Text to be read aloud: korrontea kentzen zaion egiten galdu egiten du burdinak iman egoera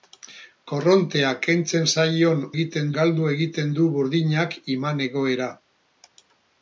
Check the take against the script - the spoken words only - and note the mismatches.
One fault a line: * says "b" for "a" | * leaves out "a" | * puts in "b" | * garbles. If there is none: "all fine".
all fine